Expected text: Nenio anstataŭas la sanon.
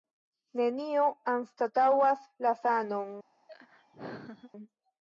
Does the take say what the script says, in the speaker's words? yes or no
yes